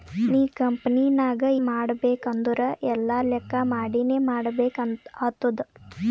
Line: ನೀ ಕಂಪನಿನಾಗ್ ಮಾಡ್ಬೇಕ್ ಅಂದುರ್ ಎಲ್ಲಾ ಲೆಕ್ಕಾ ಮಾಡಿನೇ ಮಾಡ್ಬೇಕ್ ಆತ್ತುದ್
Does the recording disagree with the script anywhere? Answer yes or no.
no